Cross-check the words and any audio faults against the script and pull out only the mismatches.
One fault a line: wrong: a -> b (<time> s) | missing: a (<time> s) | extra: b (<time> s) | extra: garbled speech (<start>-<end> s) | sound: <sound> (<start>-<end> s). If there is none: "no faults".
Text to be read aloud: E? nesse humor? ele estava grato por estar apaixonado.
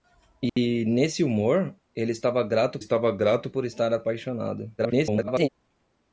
sound: dropout (0.5-0.6 s)
extra: estava grato (2.8 s)
extra: garbled speech (4.8-5.5 s)